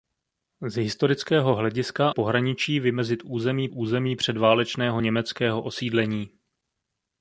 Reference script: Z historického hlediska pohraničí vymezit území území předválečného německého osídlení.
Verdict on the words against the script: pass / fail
pass